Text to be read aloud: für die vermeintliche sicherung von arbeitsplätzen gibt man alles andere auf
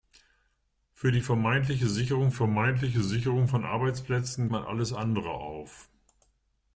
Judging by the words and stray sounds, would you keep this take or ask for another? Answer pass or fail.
fail